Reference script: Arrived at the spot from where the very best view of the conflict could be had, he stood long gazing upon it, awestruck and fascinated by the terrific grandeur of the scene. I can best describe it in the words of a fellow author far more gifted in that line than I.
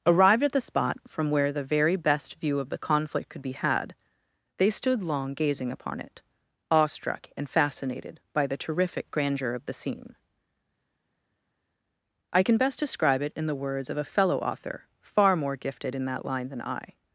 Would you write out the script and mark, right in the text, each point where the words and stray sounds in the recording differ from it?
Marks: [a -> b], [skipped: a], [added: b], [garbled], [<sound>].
Arrived at the spot from where the very best view of the conflict could be had, [he -> they] stood long gazing upon it, awestruck and fascinated by the terrific grandeur of the scene. I can best describe it in the words of a fellow author far more gifted in that line than I.